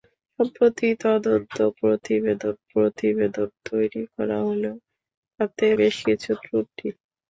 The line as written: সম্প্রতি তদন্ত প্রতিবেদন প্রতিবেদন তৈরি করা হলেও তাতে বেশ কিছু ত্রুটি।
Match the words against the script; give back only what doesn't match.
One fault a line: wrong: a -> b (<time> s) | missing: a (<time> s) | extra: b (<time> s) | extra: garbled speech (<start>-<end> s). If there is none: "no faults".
no faults